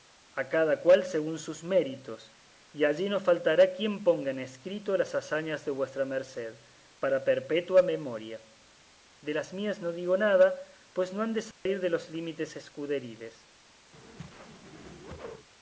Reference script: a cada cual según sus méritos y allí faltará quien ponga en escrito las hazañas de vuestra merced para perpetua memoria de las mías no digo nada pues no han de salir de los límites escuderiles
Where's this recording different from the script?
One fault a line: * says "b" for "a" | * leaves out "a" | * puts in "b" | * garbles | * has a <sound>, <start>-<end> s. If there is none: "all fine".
* puts in "no"
* has a dropout, 11.5-11.7 s
* has a whoosh, 13.9-15.5 s